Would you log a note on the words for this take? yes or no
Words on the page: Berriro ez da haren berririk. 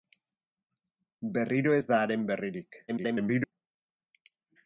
yes